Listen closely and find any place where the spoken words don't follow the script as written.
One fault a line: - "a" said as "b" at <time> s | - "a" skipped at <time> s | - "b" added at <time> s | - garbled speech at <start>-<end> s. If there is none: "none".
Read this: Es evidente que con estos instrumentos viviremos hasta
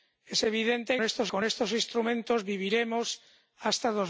- "que" said as "estos" at 1.0 s